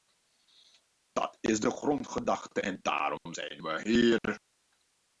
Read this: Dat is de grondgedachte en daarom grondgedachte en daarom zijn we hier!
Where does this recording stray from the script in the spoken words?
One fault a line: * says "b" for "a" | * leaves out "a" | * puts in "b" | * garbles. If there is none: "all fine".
* leaves out "grondgedachte en daarom"